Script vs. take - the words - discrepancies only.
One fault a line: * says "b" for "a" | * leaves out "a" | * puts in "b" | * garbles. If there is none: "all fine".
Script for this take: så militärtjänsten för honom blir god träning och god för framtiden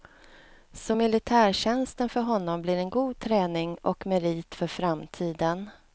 * puts in "en"
* says "merit" for "god"